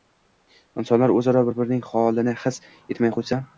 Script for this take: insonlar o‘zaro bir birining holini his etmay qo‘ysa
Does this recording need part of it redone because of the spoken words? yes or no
no